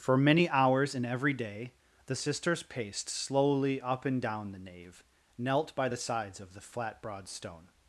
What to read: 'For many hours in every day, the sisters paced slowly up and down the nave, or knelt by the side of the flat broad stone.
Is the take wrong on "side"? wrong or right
wrong